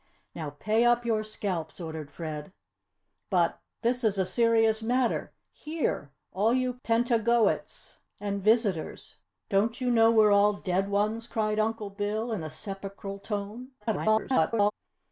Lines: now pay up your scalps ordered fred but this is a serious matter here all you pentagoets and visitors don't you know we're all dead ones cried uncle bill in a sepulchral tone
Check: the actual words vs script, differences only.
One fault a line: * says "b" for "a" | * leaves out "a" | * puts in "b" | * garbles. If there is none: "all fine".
* garbles